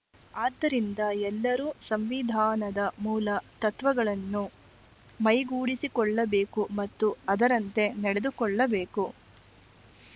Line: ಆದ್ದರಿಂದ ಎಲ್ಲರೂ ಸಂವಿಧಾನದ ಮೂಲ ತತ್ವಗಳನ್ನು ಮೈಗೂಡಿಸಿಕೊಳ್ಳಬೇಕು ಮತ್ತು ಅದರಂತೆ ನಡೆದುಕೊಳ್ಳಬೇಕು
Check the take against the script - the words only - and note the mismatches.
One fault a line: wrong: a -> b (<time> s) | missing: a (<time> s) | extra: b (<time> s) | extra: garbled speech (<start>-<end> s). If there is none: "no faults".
no faults